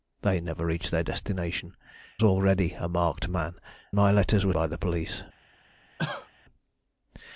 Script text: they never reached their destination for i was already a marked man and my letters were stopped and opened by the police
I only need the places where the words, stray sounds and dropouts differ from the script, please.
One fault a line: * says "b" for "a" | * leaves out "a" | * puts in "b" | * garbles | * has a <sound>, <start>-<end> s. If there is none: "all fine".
* leaves out "for i was"
* leaves out "and"
* leaves out "stopped and opened"
* has a cough, 6.0-6.3 s